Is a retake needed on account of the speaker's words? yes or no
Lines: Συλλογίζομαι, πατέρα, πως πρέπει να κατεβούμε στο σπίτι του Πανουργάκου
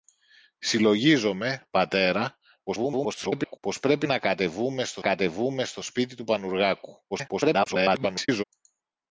yes